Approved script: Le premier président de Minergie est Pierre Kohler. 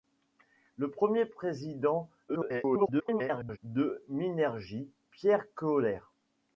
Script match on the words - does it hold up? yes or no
no